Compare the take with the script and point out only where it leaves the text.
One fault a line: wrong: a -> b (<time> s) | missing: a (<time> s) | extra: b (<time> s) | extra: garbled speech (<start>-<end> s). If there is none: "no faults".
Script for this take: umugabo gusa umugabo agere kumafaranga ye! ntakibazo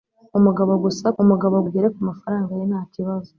no faults